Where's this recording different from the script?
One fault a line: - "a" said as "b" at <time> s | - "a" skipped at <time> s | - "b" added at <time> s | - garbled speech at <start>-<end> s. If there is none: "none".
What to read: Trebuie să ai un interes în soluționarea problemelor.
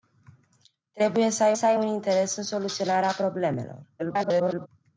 - "să ai" added at 1.5 s
- garbled speech at 4.0-4.7 s